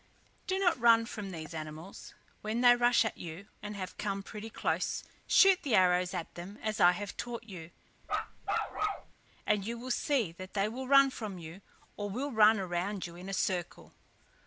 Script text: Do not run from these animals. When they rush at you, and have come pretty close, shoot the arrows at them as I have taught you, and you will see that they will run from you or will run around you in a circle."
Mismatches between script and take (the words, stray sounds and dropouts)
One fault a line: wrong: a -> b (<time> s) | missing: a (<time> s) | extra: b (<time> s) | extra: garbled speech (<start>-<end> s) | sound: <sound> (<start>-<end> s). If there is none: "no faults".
sound: bark (8.0-9.1 s)